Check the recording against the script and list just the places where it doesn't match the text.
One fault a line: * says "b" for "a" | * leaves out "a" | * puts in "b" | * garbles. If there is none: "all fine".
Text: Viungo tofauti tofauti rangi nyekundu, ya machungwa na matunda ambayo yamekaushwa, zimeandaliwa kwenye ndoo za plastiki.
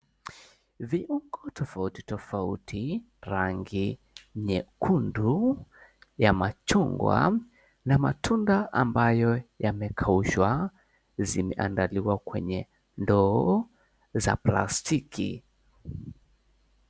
all fine